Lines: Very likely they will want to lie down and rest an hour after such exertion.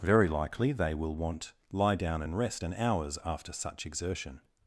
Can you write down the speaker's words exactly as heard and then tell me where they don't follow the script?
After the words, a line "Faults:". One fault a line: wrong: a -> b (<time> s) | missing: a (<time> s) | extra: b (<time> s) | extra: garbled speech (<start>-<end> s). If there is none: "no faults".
Very likely they will want lie down and rest an hours after such exertion.
Faults:
missing: to (1.5 s)
wrong: hour -> hours (2.8 s)